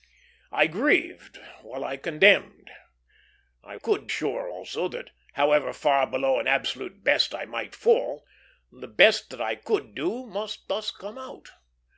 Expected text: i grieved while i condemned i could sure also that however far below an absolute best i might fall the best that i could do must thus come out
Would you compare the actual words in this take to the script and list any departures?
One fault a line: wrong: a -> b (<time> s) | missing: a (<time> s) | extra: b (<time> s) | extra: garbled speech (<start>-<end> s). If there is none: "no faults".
no faults